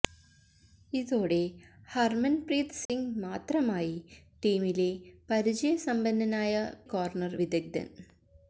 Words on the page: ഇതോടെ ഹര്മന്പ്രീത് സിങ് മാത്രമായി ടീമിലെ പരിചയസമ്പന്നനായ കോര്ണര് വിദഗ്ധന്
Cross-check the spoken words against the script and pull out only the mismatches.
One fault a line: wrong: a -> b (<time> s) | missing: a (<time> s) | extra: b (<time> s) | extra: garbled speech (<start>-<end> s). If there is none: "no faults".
no faults